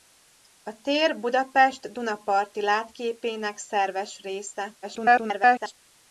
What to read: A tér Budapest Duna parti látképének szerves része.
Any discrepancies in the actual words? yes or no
yes